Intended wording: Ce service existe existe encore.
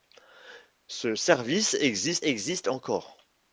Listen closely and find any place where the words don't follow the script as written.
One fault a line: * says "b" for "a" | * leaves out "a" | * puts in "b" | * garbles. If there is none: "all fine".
all fine